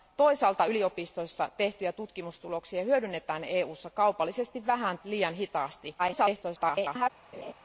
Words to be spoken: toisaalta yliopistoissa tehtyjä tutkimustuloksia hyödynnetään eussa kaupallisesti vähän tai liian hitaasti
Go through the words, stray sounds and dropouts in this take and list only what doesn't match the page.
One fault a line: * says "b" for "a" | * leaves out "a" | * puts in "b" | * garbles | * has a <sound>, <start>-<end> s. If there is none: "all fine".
* leaves out "tai"
* garbles
* has a laugh, 7.3-7.5 s